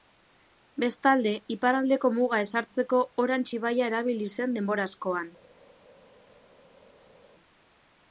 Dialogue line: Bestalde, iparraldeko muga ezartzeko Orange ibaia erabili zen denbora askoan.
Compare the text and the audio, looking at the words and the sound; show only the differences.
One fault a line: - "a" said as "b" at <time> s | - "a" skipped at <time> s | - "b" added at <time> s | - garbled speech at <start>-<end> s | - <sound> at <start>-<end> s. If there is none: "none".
none